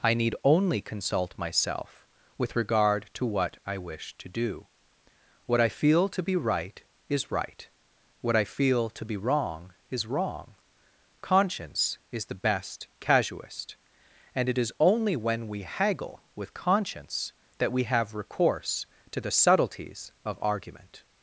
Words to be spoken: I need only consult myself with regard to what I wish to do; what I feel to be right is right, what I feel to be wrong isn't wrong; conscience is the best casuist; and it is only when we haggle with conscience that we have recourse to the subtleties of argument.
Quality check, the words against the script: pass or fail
fail